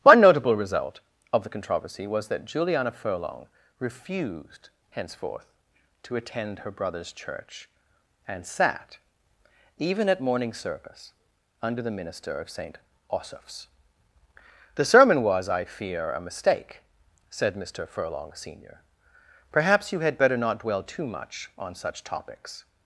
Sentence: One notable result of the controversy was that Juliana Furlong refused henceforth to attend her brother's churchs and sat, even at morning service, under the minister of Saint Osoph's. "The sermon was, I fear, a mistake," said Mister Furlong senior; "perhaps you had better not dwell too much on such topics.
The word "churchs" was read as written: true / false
false